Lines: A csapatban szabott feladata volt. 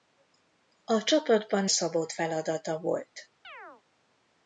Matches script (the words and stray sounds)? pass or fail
fail